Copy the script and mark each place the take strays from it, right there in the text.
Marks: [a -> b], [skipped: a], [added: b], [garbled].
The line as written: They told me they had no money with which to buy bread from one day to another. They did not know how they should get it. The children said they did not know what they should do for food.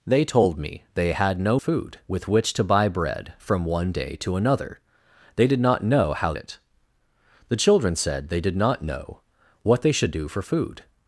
They told me they had no [money -> food] with which to buy bread from one day to another. They did not know how [skipped: they should get] it. The children said they did not know what they should do for food.